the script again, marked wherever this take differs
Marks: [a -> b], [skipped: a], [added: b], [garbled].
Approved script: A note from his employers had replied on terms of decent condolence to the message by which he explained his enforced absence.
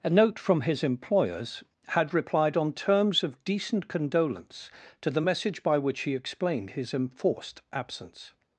A note from his employers had replied on terms of decent condolence to the message by which he explained his enforced absence.